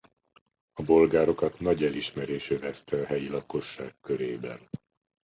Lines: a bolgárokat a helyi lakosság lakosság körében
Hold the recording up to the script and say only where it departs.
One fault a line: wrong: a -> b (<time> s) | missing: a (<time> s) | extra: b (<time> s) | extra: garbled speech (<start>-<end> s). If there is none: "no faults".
extra: nagy elismerés övezte (1.6 s)
missing: lakosság (3.9 s)